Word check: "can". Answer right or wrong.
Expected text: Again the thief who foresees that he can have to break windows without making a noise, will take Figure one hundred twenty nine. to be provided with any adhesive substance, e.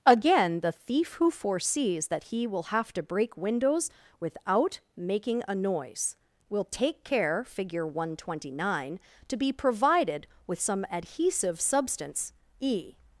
wrong